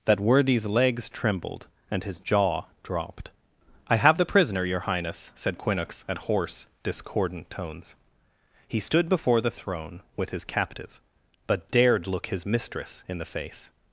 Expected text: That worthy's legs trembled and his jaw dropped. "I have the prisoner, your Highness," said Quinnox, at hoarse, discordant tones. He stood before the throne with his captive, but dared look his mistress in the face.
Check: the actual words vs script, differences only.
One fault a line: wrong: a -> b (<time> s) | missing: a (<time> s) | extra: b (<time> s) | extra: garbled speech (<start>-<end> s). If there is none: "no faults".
no faults